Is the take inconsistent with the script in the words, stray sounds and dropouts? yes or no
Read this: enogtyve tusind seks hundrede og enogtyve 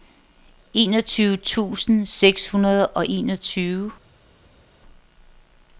no